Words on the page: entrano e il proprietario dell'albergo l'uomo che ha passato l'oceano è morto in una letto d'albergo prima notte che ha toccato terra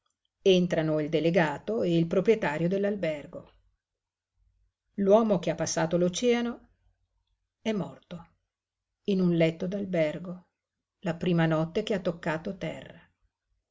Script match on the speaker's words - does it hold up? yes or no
no